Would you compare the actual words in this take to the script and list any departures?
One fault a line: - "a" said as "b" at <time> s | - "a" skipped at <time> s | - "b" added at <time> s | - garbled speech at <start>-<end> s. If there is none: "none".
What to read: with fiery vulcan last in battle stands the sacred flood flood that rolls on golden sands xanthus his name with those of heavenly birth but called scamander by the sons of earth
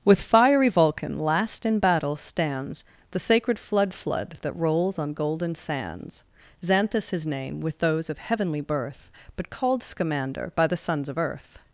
none